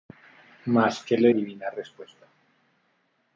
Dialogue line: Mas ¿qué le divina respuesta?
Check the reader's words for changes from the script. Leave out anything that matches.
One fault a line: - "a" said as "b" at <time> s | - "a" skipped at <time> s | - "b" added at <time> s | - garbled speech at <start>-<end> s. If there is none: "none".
none